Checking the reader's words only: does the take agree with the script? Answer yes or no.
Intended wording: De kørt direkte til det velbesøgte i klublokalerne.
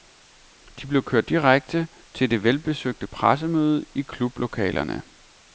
no